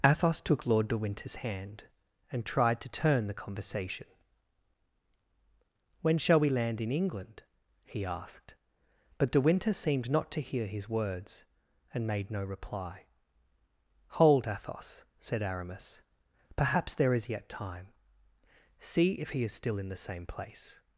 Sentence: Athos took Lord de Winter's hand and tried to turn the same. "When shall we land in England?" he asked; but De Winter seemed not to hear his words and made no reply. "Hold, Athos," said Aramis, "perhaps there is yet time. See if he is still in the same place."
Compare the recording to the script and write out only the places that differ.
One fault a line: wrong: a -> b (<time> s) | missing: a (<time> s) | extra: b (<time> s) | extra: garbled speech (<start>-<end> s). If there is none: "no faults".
wrong: same -> conversation (3.4 s)